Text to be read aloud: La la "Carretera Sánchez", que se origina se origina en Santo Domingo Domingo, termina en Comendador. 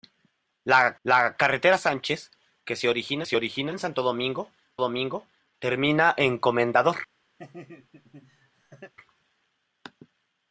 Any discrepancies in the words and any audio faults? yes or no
yes